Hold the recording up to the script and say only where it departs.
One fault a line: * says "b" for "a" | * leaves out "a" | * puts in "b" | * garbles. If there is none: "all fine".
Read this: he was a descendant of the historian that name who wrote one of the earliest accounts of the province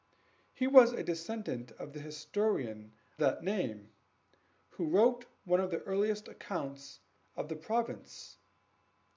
all fine